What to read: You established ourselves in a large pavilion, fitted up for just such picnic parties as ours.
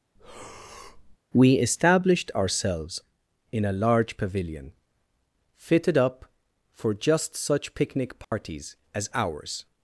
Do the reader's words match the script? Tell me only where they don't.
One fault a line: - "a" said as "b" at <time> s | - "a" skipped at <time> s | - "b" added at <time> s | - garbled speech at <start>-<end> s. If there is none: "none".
- "You" said as "We" at 1.3 s